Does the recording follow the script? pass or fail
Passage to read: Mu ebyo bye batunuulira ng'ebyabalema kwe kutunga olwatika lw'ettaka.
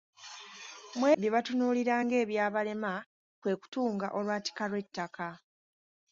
fail